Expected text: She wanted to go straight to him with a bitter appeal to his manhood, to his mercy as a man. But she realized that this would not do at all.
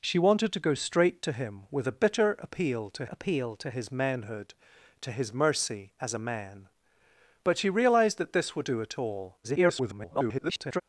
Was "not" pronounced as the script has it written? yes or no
no